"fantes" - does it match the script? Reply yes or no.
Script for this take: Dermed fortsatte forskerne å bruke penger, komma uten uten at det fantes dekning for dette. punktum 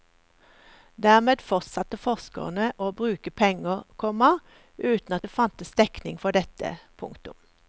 yes